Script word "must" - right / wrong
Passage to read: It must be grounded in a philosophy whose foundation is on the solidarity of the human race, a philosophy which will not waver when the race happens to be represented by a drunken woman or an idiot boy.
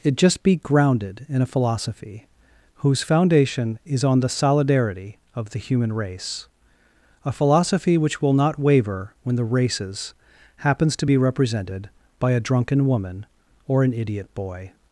wrong